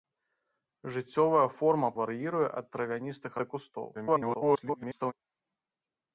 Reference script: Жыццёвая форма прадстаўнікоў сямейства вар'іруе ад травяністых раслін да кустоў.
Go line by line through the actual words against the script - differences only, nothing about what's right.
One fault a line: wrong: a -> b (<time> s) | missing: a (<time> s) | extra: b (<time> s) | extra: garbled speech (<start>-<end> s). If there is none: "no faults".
missing: прадстаўнікоў сямейства (1.9 s)
missing: раслін (3.3 s)
extra: garbled speech (3.9-5.1 s)